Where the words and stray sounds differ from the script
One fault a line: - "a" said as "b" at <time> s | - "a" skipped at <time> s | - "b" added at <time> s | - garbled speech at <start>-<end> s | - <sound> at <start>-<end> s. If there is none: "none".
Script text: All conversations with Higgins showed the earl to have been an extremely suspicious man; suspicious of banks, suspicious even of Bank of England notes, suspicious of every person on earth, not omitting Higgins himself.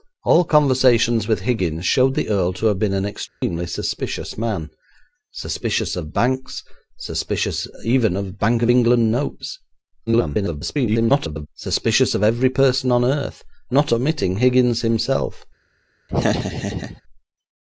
- dropout at 3.3-3.4 s
- garbled speech at 10.1-11.5 s
- laugh at 16.1-17.0 s